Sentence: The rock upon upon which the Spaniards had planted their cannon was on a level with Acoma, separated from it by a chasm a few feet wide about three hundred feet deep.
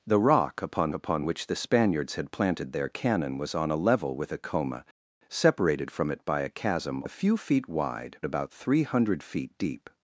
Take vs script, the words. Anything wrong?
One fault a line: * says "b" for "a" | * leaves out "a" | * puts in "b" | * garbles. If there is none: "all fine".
all fine